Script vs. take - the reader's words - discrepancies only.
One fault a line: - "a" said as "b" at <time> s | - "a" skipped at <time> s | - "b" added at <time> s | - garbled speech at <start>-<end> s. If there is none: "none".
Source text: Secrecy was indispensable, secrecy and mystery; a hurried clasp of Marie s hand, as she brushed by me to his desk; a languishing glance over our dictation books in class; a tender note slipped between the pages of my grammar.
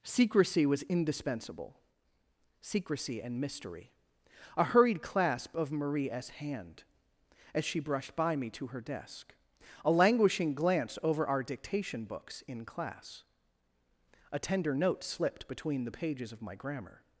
- "his" said as "her" at 8.7 s